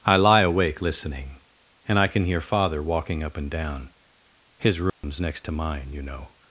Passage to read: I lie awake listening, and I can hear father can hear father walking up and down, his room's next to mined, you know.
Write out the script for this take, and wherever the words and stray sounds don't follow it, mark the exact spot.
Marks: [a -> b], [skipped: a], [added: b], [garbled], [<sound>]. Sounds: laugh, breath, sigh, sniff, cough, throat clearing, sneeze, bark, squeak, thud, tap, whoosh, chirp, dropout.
I lie awake listening, and I can hear father [skipped: can hear father] walking up and down, his room's [dropout] next to [mined, -> mine] you know.